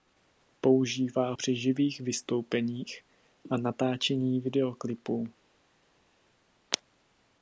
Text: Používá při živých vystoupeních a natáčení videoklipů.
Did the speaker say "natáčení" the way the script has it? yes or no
yes